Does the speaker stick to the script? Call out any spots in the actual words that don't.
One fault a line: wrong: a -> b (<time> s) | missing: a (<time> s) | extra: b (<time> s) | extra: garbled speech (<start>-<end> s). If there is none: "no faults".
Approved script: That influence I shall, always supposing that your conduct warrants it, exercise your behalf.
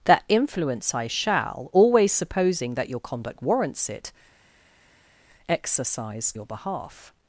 no faults